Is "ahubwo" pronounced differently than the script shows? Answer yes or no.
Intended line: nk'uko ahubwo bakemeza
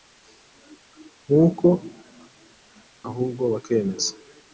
no